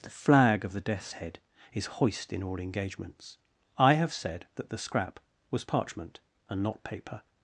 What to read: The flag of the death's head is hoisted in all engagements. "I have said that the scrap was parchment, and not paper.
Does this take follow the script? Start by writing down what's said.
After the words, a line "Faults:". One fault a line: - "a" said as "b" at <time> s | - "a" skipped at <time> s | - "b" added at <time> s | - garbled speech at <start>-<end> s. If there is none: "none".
The flag of the death's head is hoist in all engagements. "I have said that the scrap was parchment, and not paper.
Faults:
- "hoisted" said as "hoist" at 1.9 s